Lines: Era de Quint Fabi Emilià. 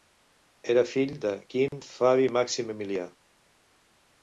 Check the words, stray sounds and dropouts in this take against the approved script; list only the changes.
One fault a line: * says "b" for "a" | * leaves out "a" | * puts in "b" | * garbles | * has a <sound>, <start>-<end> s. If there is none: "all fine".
* puts in "fill"
* has a dropout, 1.7-1.7 s
* puts in "Màxim"